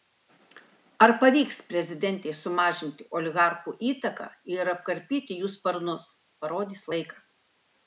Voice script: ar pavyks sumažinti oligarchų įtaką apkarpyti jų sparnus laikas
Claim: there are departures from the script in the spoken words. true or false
true